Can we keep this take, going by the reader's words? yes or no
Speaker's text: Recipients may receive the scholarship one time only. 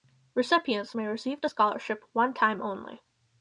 yes